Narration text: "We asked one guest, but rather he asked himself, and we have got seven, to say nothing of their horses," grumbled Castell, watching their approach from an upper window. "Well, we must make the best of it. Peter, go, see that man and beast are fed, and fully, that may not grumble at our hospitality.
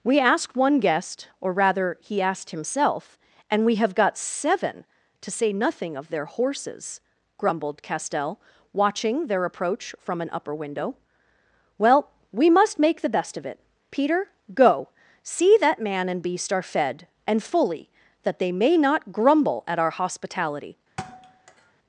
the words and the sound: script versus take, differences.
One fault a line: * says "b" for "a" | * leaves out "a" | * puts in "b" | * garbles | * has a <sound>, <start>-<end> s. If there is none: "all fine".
* says "or" for "but"
* puts in "they"
* has a thud, 21.0-21.7 s